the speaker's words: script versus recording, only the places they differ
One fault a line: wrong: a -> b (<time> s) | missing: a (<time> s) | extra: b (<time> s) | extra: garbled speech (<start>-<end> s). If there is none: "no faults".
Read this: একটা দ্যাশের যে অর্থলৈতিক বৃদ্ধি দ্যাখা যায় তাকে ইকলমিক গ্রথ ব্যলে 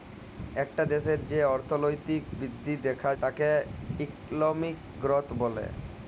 missing: যায় (3.1 s)